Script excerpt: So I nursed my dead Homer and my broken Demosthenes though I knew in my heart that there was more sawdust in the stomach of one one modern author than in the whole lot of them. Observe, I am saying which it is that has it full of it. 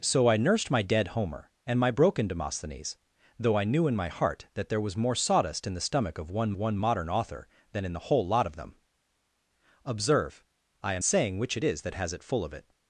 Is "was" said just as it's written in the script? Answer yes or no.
yes